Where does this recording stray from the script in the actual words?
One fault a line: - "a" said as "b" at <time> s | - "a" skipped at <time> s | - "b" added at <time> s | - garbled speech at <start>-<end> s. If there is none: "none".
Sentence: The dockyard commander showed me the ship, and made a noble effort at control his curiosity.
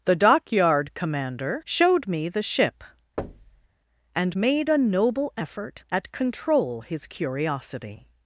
none